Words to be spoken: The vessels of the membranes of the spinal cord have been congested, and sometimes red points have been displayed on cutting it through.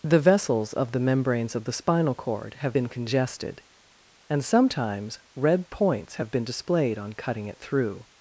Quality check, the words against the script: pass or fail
pass